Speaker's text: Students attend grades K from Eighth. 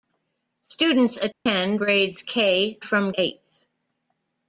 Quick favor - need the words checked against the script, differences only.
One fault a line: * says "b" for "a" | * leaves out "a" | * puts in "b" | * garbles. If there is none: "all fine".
all fine